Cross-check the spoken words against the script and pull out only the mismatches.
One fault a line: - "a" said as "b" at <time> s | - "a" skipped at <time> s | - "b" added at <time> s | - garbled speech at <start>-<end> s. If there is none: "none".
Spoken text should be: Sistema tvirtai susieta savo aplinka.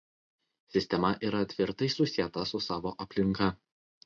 - "yra" added at 1.3 s
- "su" added at 2.5 s